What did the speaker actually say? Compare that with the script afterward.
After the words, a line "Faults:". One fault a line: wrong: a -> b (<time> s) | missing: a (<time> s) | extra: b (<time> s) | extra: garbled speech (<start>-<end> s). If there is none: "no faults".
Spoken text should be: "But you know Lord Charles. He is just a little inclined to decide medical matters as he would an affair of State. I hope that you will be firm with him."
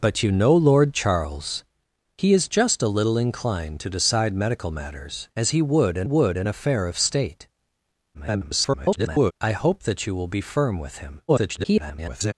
"But you know Lord Charles. He is just a little inclined to decide medical matters as he would an would an affair of State. [garbled] I hope that you will be firm with him." [garbled]
Faults:
extra: would an (6.0 s)
extra: garbled speech (8.1-9.3 s)
extra: garbled speech (11.3-12.3 s)